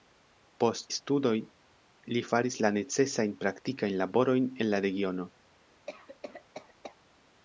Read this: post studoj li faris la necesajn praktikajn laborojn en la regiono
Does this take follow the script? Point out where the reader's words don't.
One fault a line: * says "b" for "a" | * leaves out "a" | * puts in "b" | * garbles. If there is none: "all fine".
all fine